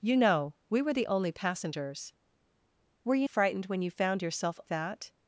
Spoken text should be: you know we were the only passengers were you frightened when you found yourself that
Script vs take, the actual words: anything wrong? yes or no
no